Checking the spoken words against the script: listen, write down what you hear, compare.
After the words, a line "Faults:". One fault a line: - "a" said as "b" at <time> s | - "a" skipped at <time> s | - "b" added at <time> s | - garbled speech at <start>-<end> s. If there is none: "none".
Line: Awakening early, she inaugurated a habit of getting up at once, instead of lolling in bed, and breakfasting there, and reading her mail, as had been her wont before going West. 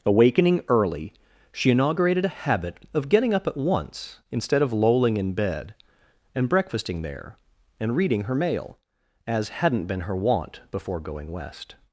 Awakening early, she inaugurated a habit of getting up at once, instead of lolling in bed, and breakfasting there, and reading her mail, as hadn't been her wont before going West.
Faults:
- "had" said as "hadn't" at 9.5 s